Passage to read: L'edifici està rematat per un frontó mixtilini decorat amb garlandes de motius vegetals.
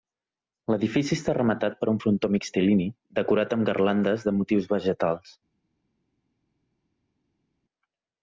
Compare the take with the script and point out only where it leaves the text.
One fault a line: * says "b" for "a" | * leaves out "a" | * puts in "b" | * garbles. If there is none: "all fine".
all fine